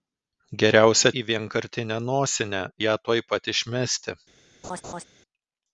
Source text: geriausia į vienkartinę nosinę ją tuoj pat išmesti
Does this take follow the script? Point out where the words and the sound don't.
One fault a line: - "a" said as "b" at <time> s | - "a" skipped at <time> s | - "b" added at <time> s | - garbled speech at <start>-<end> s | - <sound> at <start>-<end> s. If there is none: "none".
- laugh at 4.6-5.0 s